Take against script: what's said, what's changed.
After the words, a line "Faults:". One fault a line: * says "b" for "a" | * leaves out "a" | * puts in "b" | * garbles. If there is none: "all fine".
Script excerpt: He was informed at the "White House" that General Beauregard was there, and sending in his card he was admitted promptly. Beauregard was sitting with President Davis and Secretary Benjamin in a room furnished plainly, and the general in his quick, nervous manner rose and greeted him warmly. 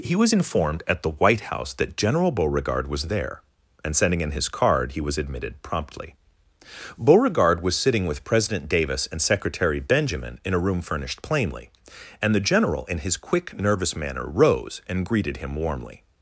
He was informed at the "White House" that General Beauregard was there, and sending in his card he was admitted promptly. Beauregard was sitting with President Davis and Secretary Benjamin in a room furnished plainly, and the general in his quick, nervous manner rose and greeted him warmly.
Faults:
all fine